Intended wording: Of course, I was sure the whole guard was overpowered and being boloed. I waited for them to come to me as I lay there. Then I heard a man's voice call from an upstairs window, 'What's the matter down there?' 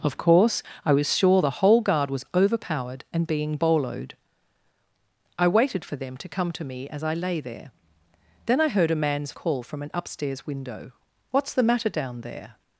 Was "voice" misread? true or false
true